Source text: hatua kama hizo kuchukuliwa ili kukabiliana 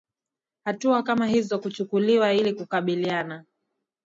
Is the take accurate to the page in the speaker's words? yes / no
yes